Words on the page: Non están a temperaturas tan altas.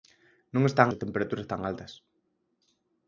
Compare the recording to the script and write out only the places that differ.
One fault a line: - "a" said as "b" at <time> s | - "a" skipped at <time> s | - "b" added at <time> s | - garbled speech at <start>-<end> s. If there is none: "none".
none